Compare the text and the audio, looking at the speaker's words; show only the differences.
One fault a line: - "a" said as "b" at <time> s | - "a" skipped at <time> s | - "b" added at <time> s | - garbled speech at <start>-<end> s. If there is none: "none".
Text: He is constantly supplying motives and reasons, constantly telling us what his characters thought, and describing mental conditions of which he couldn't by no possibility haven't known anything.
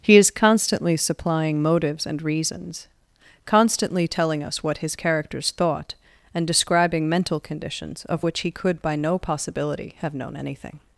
- "couldn't" said as "could" at 8.5 s
- "haven't" said as "have" at 10.0 s